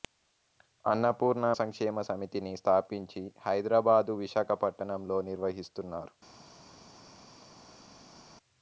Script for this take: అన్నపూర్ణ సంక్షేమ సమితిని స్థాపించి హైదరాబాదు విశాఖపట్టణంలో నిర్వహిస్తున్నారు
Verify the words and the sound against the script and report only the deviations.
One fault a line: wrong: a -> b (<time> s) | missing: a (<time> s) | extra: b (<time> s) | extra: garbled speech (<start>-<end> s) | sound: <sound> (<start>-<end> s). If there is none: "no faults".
no faults